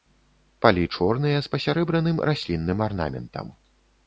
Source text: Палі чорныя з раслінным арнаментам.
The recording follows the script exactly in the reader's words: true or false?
false